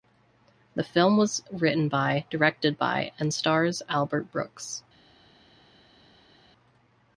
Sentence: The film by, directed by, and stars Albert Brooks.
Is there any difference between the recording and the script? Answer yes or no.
yes